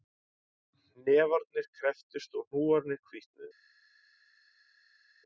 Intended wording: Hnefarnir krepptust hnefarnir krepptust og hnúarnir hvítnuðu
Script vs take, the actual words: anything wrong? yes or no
yes